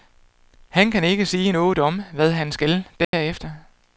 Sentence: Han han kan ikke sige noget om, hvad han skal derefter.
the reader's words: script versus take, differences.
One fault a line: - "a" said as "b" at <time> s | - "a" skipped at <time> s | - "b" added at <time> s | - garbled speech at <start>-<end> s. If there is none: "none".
- "han" skipped at 0.9 s